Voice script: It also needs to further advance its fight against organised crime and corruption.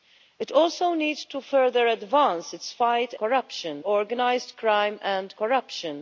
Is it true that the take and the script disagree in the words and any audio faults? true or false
true